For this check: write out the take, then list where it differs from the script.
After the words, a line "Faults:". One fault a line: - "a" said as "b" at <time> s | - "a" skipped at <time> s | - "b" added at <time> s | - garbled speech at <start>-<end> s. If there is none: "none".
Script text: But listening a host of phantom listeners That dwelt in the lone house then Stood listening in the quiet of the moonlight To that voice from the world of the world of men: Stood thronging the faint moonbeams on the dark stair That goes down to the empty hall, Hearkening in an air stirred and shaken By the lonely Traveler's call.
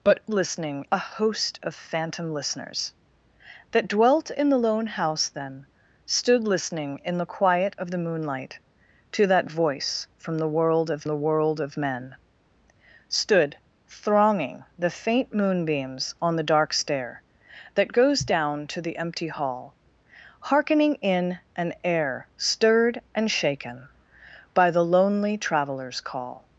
But listening a host of phantom listeners That dwelt in the lone house then Stood listening in the quiet of the moonlight To that voice from the world of the world of men: Stood thronging the faint moonbeams on the dark stair That goes down to the empty hall, Hearkening in an air stirred and shaken By the lonely Traveler's call.
Faults:
none